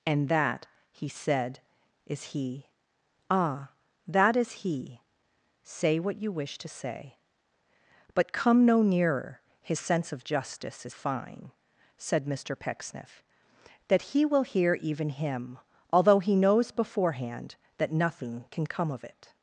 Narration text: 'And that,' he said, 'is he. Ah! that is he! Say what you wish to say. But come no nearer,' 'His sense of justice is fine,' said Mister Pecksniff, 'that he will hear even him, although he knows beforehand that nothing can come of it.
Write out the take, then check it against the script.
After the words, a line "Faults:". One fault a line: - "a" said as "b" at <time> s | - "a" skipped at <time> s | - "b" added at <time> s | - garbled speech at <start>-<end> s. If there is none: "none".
'And that,' he said, 'is he. Ah! that is he! Say what you wish to say. But come no nearer,' 'His sense of justice is fine,' said Mister Pecksniff, 'that he will hear even him, although he knows beforehand that nothing can come of it.
Faults:
none